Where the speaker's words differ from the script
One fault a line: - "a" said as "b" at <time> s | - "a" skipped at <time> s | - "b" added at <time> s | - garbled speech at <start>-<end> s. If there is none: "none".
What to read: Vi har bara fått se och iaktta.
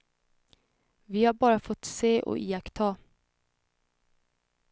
none